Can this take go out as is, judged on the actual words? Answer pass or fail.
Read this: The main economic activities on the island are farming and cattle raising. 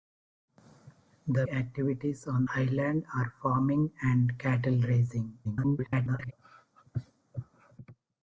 fail